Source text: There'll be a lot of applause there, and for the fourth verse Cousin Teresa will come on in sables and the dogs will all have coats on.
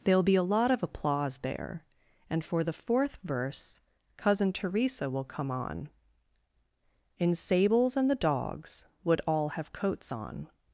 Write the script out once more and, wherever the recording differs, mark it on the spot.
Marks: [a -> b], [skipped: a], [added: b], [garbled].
There'll be a lot of applause there, and for the fourth verse Cousin Teresa will come on in sables and the dogs [will -> would] all have coats on.